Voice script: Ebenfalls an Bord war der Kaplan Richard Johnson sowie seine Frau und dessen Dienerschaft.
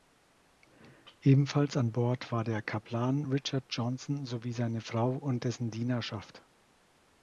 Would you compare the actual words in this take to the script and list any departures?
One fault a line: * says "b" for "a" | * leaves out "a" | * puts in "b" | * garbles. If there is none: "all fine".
all fine